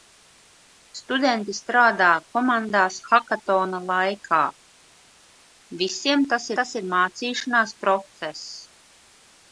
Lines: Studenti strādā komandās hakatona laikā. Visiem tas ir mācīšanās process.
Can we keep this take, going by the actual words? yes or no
no